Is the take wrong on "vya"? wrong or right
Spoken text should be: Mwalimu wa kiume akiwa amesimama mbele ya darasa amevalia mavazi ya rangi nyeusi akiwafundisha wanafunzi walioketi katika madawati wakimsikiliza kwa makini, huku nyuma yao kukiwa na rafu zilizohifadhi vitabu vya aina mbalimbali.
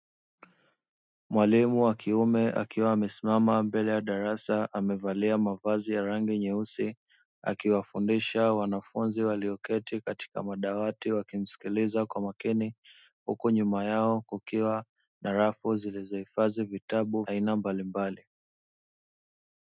wrong